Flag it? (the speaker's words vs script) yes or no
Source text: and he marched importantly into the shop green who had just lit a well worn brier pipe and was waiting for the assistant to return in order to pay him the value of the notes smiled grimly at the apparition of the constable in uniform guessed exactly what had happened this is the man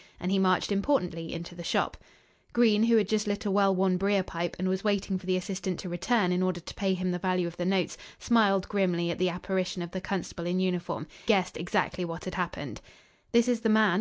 no